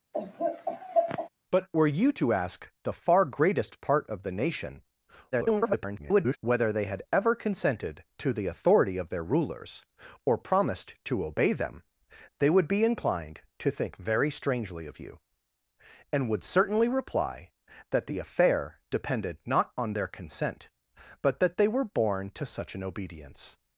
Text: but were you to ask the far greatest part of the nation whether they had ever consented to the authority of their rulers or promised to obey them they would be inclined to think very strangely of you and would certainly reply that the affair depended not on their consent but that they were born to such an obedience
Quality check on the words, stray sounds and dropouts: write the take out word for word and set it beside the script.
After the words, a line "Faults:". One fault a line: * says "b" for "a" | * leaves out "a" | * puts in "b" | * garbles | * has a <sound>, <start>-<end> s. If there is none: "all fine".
but were you to ask the far greatest part of the nation [garbled] whether they had ever consented to the authority of their rulers or promised to obey them they would be inclined to think very strangely of you and would certainly reply that the affair depended not on their consent but that they were born to such an obedience
Faults:
* has a laugh, 0.1-1.3 s
* garbles